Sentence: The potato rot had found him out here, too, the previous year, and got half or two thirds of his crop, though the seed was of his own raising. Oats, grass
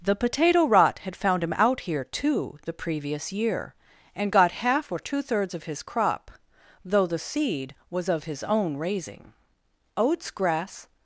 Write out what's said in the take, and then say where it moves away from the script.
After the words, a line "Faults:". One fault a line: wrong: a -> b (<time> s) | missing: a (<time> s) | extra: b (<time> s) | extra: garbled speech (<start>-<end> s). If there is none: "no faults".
The potato rot had found him out here, too, the previous year, and got half or two thirds of his crop, though the seed was of his own raising. Oats, grass
Faults:
no faults